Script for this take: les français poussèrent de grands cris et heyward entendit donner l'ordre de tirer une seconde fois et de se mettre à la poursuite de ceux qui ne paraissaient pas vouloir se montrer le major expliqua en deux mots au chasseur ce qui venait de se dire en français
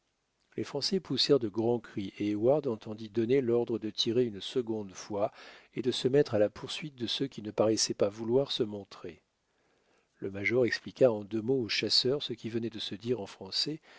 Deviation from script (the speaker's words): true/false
false